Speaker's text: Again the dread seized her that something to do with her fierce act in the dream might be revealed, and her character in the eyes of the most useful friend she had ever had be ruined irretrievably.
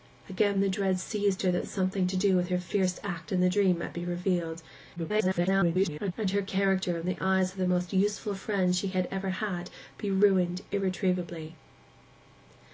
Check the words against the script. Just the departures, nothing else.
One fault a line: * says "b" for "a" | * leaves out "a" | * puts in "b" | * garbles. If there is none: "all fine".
* garbles